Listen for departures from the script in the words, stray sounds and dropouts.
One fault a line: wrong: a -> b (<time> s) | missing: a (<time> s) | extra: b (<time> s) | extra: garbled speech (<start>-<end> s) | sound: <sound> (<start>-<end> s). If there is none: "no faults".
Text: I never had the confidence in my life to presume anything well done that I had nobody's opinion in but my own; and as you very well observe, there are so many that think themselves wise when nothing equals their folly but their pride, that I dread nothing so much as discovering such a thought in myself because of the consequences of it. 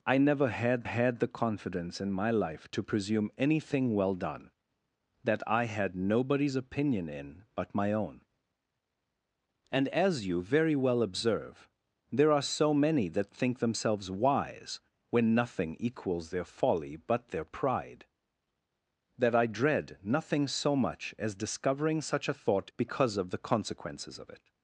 extra: had (0.8 s)
missing: in myself (22.7 s)